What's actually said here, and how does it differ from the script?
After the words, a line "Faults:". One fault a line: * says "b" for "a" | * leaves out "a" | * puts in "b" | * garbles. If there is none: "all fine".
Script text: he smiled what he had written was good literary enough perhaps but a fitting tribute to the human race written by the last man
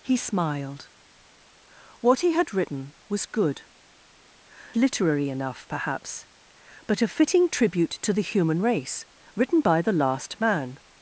he smiled what he had written was good literary enough perhaps but a fitting tribute to the human race written by the last man
Faults:
all fine